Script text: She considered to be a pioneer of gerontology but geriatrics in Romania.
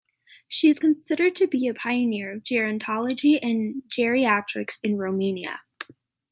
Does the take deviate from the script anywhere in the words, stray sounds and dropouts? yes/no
yes